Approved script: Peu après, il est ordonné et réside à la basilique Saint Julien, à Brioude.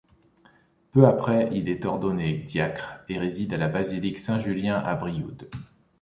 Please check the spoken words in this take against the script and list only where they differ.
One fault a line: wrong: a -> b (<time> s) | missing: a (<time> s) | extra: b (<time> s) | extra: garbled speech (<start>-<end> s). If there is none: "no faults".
extra: diacre (2.3 s)